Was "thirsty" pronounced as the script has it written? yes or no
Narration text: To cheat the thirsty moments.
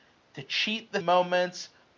no